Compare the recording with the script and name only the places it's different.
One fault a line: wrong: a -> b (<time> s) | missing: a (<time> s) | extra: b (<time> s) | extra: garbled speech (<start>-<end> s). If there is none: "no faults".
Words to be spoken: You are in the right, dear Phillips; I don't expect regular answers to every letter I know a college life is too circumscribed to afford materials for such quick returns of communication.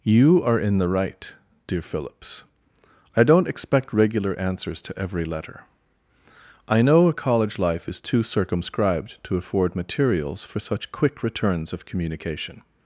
no faults